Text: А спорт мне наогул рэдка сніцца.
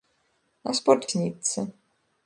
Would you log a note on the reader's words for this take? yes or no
yes